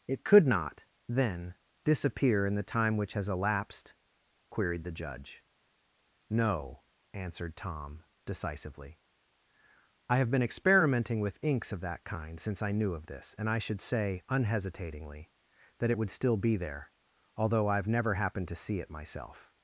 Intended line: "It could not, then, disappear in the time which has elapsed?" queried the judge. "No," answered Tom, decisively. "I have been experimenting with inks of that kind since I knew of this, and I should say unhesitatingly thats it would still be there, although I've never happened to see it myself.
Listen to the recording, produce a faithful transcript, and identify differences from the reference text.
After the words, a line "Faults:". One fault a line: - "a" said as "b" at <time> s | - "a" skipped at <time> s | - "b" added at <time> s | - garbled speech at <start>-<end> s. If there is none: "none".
"It could not, then, disappear in the time which has elapsed?" queried the judge. "No," answered Tom, decisively. "I have been experimenting with inks of that kind since I knew of this, and I should say unhesitatingly that it would still be there, although I've never happened to see it myself.
Faults:
- "thats" said as "that" at 15.8 s